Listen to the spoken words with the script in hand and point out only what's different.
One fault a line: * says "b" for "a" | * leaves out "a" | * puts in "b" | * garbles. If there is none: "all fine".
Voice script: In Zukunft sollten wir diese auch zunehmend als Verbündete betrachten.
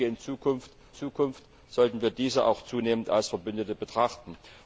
* puts in "Zukunft"